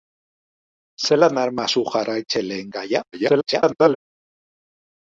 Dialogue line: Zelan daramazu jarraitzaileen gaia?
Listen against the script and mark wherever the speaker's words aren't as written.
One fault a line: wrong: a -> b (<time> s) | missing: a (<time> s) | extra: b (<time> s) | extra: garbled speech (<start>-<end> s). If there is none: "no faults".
extra: garbled speech (3.1-4.0 s)